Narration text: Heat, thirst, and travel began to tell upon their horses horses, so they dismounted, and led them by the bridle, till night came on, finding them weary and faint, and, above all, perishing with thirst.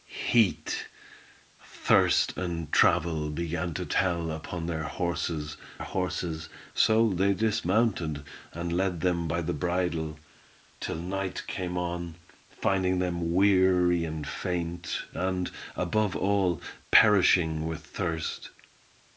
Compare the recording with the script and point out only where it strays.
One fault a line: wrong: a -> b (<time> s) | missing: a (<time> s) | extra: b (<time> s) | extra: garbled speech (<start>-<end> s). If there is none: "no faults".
no faults